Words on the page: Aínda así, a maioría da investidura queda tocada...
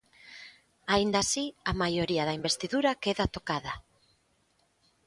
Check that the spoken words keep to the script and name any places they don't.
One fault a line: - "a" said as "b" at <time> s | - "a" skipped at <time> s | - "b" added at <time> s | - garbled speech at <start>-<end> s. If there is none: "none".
none